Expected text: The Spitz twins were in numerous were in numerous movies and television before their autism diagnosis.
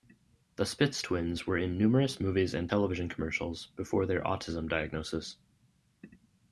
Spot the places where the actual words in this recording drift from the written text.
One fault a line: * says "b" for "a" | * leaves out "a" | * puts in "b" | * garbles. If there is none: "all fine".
* leaves out "were in numerous"
* puts in "commercials"